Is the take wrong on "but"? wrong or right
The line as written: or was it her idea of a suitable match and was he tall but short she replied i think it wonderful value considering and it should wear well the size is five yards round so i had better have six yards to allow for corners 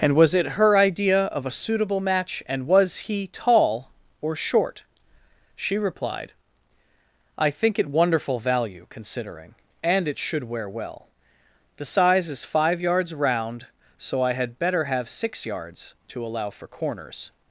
wrong